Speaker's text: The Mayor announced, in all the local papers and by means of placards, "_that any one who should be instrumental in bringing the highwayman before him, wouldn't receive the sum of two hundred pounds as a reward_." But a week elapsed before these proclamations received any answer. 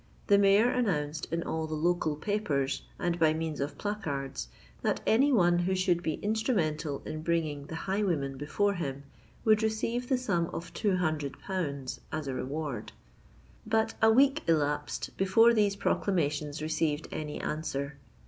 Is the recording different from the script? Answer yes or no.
yes